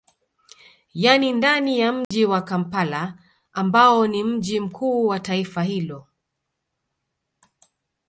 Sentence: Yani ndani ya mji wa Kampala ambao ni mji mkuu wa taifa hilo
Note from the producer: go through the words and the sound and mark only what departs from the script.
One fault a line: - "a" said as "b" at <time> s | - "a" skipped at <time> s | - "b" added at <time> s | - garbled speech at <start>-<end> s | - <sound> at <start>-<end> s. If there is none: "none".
- dropout at 2.0-2.1 s